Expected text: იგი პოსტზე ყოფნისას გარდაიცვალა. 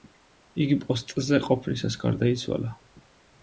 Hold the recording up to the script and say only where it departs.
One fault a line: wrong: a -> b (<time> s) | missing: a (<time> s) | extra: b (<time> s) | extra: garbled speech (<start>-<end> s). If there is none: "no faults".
no faults